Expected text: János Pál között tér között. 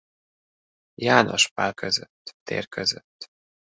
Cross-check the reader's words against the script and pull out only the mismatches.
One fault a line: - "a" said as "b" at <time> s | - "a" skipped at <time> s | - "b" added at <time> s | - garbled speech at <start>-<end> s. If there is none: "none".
none